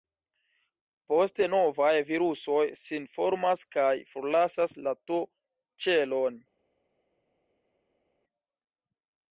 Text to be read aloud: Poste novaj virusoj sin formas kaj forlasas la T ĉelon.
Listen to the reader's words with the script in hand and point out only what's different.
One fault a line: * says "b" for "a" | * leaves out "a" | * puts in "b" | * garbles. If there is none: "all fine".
all fine